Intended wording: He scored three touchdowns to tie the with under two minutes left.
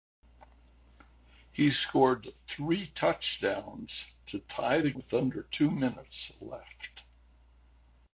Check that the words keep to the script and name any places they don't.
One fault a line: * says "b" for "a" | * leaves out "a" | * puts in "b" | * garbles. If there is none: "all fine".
all fine